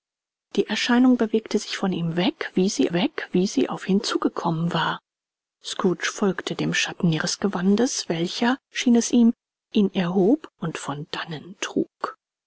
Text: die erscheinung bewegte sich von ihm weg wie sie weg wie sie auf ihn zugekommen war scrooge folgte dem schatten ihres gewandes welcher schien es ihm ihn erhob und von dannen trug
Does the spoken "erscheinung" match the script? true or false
true